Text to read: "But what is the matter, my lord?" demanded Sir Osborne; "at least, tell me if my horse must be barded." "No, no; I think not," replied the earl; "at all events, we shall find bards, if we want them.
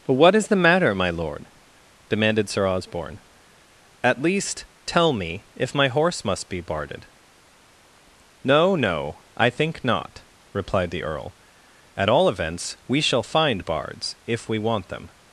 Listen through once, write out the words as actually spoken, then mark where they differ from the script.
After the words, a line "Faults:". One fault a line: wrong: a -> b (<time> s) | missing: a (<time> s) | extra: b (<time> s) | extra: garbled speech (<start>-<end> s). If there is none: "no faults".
"But what is the matter, my lord?" demanded Sir Osborne; "at least, tell me if my horse must be barded." "No, no; I think not," replied the earl; "at all events, we shall find bards, if we want them.
Faults:
no faults